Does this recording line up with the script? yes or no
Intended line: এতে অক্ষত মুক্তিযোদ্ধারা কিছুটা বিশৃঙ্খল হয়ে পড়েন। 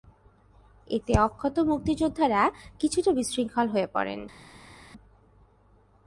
yes